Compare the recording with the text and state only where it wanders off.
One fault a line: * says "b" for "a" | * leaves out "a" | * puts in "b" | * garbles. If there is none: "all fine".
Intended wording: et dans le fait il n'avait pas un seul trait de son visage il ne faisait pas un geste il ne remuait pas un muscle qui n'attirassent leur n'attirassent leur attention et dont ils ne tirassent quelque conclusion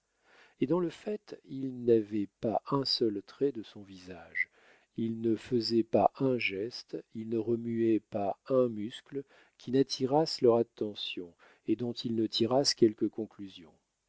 * leaves out "n'attirassent leur"